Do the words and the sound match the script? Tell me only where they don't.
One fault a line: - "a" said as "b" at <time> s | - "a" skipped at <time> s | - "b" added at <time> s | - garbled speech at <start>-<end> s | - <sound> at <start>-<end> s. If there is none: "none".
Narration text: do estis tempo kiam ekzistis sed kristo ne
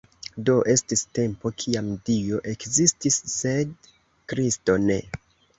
- "dio" added at 2.1 s